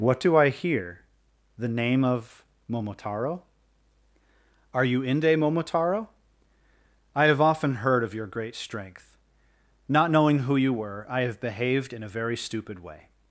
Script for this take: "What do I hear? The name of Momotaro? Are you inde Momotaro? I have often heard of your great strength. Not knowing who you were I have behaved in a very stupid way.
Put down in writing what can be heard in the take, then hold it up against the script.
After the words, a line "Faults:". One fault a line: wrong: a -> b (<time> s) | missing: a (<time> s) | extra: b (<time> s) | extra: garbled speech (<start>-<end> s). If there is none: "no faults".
"What do I hear? The name of Momotaro? Are you inde Momotaro? I have often heard of your great strength. Not knowing who you were I have behaved in a very stupid way.
Faults:
no faults